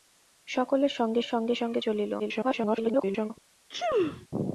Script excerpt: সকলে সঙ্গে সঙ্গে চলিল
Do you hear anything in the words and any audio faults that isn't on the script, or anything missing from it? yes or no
yes